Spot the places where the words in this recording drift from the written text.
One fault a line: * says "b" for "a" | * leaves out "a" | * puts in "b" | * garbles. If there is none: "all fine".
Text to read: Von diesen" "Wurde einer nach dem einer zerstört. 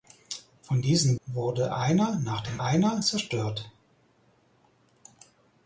all fine